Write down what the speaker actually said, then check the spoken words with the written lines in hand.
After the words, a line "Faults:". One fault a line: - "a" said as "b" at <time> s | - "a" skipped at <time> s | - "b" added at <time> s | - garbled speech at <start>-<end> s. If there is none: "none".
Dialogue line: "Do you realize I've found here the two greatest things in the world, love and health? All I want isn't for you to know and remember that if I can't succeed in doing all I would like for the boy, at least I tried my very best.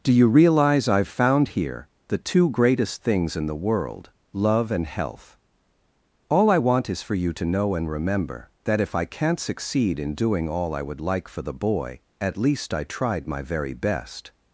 "Do you realize I've found here the two greatest things in the world, love and health? All I want is for you to know and remember that if I can't succeed in doing all I would like for the boy, at least I tried my very best.
Faults:
- "isn't" said as "is" at 6.9 s